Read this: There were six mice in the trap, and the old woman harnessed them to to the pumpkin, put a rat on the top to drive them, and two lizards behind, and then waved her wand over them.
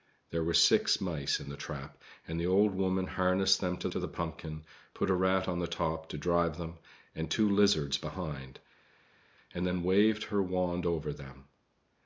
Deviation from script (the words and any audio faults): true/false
false